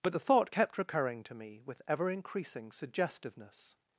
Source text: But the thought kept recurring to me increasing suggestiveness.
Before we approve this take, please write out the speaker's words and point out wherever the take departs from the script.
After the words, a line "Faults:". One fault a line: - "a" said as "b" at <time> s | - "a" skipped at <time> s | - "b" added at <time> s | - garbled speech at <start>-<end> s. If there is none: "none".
But the thought kept recurring to me with ever increasing suggestiveness.
Faults:
- "with ever" added at 1.7 s